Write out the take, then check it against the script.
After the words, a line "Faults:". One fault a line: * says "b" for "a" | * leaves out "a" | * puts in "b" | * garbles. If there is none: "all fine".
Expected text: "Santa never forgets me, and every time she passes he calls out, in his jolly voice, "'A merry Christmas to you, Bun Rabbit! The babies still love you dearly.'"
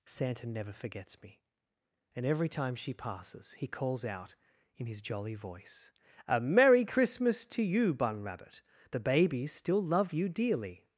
"Santa never forgets me, and every time she passes he calls out, in his jolly voice, "'A merry Christmas to you, Bun Rabbit! The babies still love you dearly.'"
Faults:
all fine